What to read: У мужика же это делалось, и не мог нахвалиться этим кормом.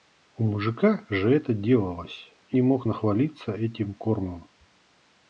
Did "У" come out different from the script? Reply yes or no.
no